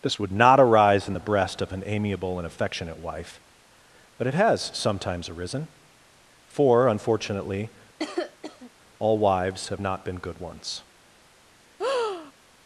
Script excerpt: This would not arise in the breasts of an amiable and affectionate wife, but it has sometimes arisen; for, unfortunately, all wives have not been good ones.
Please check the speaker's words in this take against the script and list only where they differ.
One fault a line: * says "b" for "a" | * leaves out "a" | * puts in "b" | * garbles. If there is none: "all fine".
* says "breast" for "breasts"